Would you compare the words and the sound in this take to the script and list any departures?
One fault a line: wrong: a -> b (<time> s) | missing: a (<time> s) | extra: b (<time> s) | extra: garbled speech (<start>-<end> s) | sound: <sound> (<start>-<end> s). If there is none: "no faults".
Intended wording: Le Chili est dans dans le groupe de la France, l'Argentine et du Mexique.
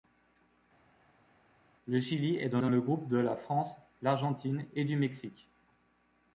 no faults